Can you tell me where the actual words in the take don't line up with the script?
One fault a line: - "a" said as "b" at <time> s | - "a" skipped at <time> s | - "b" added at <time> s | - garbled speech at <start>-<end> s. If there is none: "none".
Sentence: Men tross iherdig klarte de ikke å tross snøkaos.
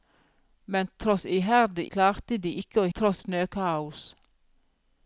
none